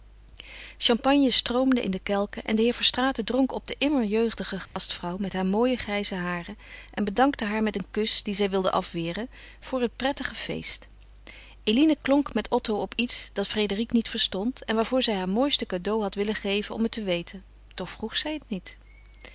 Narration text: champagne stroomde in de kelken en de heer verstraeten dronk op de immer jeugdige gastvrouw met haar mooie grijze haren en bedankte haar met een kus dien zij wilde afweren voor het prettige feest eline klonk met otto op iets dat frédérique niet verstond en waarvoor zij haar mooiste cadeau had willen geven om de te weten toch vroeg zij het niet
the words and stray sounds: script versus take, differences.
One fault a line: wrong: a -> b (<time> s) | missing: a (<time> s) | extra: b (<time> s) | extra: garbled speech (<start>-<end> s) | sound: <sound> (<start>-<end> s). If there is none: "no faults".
sound: dropout (4.7-4.8 s)
wrong: de -> het (16.8 s)